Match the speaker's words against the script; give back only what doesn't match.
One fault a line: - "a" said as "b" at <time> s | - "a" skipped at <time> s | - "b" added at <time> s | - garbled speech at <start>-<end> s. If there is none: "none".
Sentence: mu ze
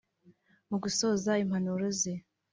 - "gusoza impanuro" added at 0.8 s